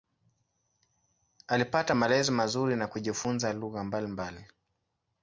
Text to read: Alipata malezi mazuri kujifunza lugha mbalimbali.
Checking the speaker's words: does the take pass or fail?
fail